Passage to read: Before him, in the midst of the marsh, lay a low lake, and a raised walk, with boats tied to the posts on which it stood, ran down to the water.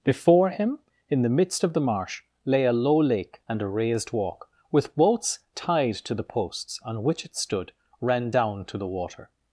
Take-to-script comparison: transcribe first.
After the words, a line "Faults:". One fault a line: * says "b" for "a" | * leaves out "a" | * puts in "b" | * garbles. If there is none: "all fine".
Before him, in the midst of the marsh, lay a low lake, and a raised walk, with boats tied to the posts on which it stood, ran down to the water.
Faults:
all fine